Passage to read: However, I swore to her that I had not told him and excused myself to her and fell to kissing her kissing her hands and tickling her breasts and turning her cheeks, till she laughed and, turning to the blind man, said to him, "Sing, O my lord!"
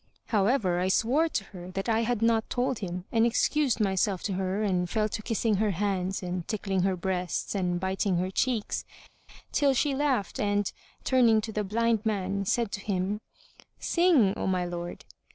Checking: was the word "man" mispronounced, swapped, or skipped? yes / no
no